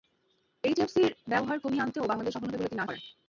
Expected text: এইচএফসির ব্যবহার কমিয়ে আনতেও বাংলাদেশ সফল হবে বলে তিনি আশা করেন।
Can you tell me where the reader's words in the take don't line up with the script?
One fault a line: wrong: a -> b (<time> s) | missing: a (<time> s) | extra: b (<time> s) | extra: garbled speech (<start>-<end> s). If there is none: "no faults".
missing: আশা (2.8 s)